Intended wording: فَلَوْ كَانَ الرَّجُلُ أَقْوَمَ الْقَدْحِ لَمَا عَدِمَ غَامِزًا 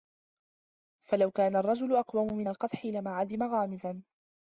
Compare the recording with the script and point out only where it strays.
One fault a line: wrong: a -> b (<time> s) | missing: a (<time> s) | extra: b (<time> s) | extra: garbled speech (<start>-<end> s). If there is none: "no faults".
extra: مِنْ (2.4 s)